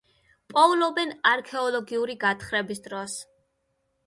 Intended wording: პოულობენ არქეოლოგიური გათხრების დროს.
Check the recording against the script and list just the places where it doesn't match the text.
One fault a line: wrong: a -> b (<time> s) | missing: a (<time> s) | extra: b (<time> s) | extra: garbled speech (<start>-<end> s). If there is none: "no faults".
no faults